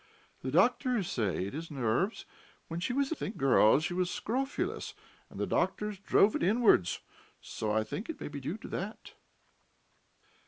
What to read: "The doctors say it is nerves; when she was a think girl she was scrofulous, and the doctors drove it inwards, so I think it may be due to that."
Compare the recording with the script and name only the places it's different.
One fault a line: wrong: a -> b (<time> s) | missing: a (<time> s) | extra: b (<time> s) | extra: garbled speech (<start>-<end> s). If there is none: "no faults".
no faults